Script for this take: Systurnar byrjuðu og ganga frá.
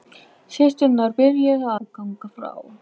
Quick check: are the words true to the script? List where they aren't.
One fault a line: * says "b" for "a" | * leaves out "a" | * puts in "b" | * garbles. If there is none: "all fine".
all fine